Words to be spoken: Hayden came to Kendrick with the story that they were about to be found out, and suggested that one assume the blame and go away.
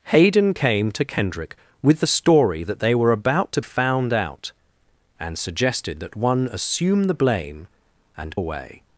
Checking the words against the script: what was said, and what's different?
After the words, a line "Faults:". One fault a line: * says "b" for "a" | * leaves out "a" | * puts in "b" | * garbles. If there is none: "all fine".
Hayden came to Kendrick with the story that they were about to found out, and suggested that one assume the blame and away.
Faults:
* leaves out "be"
* leaves out "go"